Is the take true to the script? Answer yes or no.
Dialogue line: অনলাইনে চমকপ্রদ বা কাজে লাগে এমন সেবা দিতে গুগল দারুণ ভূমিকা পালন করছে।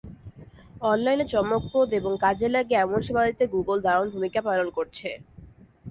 no